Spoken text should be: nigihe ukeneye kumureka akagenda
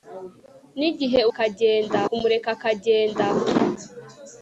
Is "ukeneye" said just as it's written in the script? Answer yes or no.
no